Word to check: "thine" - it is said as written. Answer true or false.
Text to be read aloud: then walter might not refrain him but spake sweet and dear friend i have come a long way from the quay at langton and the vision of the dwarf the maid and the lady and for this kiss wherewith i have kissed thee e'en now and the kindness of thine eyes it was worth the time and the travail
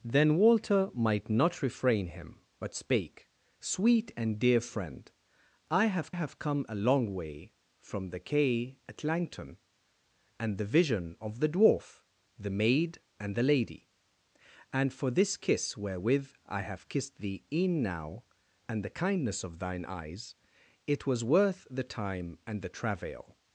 true